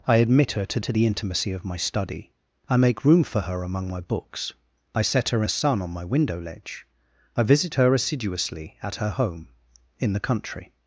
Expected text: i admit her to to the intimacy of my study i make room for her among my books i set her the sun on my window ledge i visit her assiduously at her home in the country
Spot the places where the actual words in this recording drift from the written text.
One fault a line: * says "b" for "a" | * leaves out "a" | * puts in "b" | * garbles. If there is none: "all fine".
all fine